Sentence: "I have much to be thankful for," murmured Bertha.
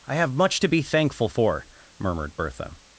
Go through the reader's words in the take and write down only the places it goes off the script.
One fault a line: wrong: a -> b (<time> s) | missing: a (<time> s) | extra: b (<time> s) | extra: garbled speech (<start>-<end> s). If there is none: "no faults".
no faults